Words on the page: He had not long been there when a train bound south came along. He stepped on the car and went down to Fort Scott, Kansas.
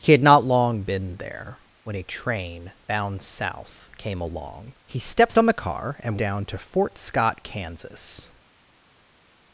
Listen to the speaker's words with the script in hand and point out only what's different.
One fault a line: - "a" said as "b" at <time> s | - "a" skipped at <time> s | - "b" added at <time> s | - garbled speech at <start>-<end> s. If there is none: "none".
- "went" skipped at 6.2 s